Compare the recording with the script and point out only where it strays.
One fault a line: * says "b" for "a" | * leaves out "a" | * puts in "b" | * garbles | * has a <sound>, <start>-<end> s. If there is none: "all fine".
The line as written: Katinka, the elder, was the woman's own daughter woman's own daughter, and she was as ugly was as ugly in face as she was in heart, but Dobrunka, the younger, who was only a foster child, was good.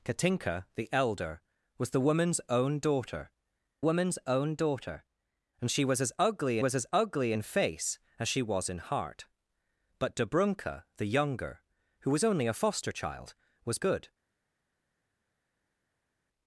all fine